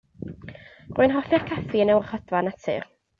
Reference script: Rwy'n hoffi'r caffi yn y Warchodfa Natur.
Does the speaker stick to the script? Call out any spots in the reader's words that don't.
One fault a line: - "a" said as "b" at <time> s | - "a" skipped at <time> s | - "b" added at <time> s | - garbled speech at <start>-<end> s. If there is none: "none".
none